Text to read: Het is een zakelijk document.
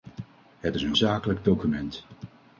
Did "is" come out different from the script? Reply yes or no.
no